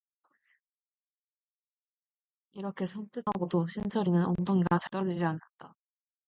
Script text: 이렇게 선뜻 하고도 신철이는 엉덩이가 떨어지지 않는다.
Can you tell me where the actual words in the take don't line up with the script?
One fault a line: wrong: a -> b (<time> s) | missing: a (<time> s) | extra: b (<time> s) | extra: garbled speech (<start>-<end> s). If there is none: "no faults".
no faults